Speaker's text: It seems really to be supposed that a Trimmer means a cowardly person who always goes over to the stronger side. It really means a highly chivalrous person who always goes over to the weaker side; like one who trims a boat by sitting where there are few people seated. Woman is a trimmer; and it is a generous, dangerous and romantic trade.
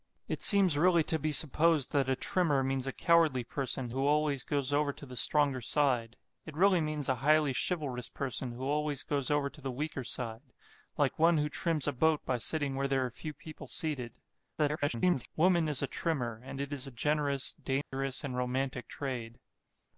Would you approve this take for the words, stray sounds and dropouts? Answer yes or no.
no